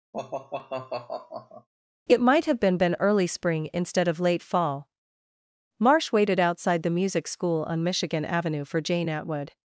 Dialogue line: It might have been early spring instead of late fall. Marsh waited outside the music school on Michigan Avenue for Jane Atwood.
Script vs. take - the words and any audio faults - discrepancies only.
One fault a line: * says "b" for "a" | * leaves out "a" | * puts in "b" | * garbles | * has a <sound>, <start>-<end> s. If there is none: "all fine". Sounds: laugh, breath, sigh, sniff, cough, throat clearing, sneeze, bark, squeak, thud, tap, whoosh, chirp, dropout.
* has a sigh, 0.1-1.7 s
* puts in "been"